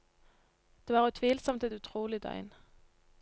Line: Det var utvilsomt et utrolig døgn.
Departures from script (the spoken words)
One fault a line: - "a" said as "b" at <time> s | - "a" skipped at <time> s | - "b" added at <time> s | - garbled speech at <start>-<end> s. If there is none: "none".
none